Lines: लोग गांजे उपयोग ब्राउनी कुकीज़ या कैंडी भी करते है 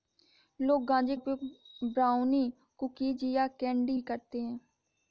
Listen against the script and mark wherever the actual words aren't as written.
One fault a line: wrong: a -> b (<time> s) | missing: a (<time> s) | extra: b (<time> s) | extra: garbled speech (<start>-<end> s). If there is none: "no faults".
no faults